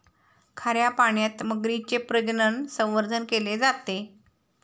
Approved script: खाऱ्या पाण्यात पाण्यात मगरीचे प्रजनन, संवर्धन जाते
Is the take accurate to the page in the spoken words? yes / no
no